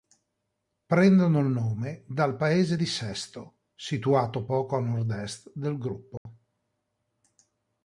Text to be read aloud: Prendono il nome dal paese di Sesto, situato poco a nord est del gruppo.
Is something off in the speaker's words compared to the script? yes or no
no